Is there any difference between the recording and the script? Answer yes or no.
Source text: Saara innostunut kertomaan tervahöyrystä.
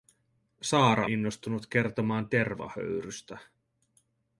no